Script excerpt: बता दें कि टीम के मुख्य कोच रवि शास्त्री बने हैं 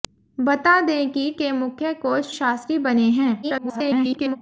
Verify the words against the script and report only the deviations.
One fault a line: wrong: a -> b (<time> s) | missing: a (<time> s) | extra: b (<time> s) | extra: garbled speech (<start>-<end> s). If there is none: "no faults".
missing: टीम (1.3 s)
missing: रवि (2.4 s)
extra: garbled speech (3.4-4.4 s)